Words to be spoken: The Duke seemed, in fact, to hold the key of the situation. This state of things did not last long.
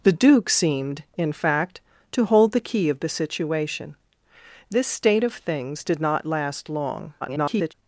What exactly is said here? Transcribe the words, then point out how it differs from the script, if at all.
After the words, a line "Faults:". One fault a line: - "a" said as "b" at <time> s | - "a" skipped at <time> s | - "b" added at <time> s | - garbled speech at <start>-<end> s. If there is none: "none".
The Duke seemed, in fact, to hold the key of the situation. This state of things did not last long. [garbled]
Faults:
- garbled speech at 7.2-7.7 s